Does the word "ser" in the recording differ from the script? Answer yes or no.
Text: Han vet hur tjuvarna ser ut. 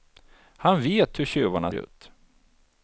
yes